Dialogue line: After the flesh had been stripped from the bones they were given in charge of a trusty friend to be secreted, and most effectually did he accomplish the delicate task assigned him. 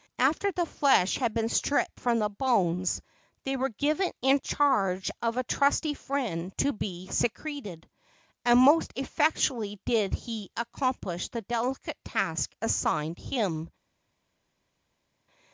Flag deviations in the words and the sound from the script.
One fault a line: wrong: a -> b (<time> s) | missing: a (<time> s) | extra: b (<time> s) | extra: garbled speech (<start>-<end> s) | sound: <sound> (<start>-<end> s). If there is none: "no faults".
no faults